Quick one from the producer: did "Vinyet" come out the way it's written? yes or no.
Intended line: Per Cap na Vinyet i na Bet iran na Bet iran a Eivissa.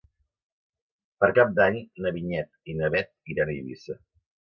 yes